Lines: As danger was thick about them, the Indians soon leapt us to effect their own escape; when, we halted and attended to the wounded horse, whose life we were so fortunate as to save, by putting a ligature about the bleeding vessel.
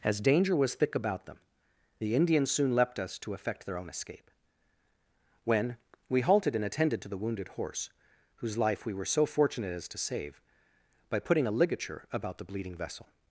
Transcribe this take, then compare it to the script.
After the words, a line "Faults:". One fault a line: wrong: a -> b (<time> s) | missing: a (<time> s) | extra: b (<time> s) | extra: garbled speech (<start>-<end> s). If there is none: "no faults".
As danger was thick about them, the Indians soon leapt us to effect their own escape; when, we halted and attended to the wounded horse, whose life we were so fortunate as to save, by putting a ligature about the bleeding vessel.
Faults:
no faults